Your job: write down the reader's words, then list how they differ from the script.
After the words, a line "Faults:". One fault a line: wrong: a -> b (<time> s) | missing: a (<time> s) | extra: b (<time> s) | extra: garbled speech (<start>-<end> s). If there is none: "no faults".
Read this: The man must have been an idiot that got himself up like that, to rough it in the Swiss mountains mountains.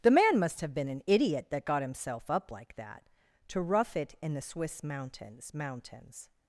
The man must have been an idiot that got himself up like that, to rough it in the Swiss mountains mountains.
Faults:
no faults